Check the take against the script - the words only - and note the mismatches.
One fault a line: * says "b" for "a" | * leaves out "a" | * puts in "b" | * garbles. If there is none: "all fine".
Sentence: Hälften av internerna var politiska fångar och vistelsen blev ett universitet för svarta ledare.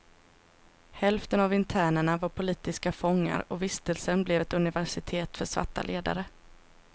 all fine